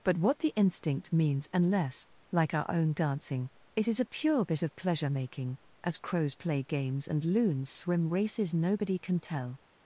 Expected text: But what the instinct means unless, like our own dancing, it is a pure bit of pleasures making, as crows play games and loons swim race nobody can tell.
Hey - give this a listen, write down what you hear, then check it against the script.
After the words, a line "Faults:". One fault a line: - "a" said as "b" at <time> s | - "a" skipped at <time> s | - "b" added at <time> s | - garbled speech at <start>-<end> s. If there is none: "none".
But what the instinct means unless, like our own dancing, it is a pure bit of pleasure making, as crows play games and loons swim races nobody can tell.
Faults:
- "pleasures" said as "pleasure" at 4.8 s
- "race" said as "races" at 8.1 s